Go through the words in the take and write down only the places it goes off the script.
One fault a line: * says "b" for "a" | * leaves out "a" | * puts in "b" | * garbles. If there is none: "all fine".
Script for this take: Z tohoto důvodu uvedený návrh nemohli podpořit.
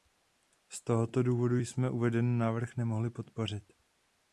* puts in "jsme"